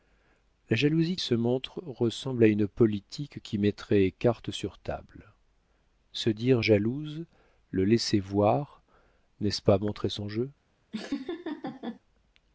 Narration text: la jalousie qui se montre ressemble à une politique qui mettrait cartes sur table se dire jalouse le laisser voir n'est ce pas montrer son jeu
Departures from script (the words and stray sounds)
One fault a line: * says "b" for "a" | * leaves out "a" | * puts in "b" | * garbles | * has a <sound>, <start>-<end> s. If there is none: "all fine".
* leaves out "qui"
* has a laugh, 10.9-12.0 s